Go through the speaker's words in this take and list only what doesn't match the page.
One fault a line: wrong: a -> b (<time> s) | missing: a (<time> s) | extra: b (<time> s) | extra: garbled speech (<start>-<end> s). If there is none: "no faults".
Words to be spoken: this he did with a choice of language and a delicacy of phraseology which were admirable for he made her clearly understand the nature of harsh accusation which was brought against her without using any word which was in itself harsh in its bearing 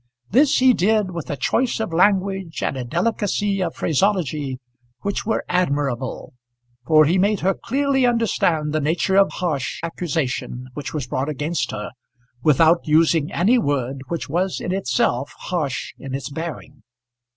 no faults